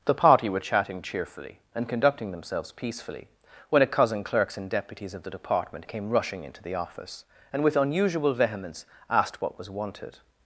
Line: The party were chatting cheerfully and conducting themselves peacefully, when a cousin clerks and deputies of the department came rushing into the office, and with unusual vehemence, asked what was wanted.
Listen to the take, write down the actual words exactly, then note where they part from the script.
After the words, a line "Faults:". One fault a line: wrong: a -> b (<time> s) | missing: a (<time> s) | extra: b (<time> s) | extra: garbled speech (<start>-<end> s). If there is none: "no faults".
The party were chatting cheerfully and conducting themselves peacefully, when a cousin clerks and deputies of the department came rushing into the office, and with unusual vehemence, asked what was wanted.
Faults:
no faults